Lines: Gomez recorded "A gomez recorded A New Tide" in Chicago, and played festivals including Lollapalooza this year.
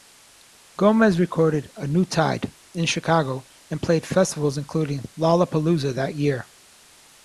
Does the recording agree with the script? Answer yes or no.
no